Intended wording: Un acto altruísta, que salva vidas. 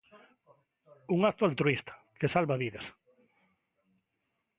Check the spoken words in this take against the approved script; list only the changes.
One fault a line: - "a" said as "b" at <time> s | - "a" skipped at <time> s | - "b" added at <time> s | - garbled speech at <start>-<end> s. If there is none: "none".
none